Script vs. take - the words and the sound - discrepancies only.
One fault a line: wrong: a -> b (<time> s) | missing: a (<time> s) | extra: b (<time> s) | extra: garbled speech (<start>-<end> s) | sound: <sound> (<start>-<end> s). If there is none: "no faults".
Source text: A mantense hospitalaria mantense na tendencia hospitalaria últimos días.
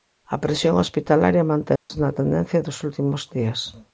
wrong: mantense -> presión (0.4 s)
sound: dropout (1.8-1.9 s)
wrong: hospitalaria -> dos (2.7 s)